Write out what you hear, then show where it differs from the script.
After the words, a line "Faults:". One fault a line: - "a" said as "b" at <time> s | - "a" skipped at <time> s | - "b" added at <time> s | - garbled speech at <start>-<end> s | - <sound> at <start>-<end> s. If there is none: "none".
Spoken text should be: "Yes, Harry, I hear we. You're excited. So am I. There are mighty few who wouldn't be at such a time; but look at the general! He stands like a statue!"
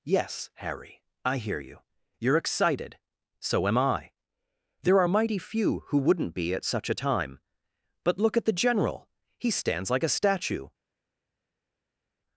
"Yes, Harry, I hear you. You're excited. So am I. There are mighty few who wouldn't be at such a time; but look at the general! He stands like a statue!"
Faults:
- "we" said as "you" at 1.6 s